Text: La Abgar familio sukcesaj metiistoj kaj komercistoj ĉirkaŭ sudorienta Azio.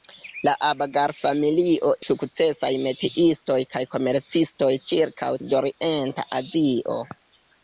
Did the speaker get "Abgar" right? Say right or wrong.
right